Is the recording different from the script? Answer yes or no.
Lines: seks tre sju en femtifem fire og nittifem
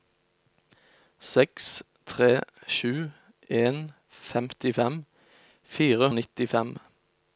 no